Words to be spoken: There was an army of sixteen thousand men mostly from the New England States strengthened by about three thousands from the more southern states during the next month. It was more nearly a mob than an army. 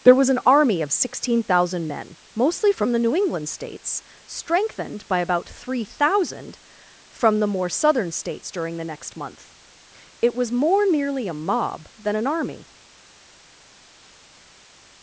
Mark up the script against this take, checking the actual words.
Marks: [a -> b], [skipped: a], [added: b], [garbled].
There was an army of sixteen thousand men mostly from the New England States strengthened by about three [thousands -> thousand] from the more southern states during the next month. It was more nearly a mob than an army.